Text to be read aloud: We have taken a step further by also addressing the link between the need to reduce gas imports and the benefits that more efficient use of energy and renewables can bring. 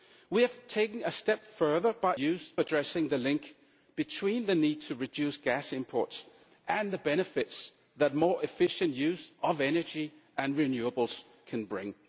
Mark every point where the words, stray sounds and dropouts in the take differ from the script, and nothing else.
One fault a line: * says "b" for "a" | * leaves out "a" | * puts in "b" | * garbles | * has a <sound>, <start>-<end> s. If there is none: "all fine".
* says "use" for "also"